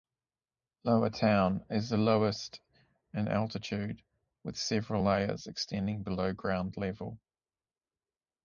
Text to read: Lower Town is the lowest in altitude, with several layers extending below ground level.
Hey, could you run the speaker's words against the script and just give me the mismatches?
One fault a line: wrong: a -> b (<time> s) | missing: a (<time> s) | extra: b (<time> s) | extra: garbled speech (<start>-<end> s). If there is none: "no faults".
no faults